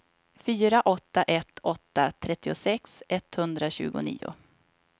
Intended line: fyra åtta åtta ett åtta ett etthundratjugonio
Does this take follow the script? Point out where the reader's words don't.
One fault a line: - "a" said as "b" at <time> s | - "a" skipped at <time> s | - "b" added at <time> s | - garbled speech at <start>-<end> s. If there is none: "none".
- "åtta" skipped at 1.2 s
- "ett" said as "trettiosex" at 2.1 s